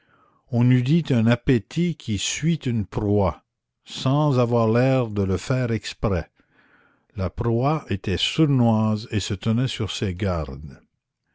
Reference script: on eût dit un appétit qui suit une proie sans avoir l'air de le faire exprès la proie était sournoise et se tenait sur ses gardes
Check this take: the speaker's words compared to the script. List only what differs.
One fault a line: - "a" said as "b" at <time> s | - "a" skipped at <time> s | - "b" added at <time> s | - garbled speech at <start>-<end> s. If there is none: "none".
none